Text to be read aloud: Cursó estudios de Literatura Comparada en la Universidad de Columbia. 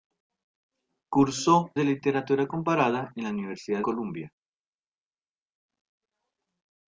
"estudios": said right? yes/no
no